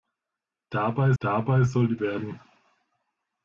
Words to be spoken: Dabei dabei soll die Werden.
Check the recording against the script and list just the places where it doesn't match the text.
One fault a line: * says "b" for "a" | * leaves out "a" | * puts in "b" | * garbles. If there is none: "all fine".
all fine